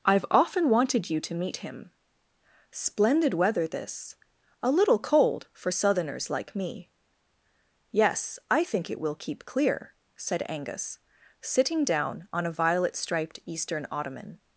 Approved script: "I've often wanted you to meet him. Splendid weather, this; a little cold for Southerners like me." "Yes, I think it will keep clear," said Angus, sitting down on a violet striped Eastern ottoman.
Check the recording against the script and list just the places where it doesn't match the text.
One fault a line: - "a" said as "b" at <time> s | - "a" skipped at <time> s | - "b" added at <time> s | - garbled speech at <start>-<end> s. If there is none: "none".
none